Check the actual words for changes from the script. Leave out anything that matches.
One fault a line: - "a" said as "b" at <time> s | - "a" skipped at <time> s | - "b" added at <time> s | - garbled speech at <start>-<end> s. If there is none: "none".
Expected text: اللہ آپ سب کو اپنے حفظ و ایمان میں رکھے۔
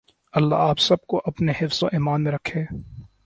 none